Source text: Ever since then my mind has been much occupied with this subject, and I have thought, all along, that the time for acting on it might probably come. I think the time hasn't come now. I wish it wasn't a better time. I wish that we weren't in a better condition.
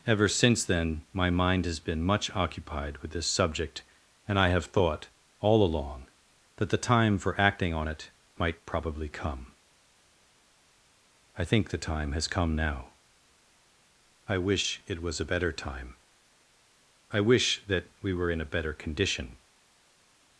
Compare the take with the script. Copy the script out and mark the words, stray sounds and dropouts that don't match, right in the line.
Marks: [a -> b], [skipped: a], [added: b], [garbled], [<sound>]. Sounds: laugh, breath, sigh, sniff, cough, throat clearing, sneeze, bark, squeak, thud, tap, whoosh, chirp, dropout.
Ever since then my mind has been much occupied with this subject, and I have thought, all along, that the time for acting on it might probably come. I think the time [hasn't -> has] come now. I wish it [wasn't -> was] a better time. I wish that we [weren't -> were] in a better condition.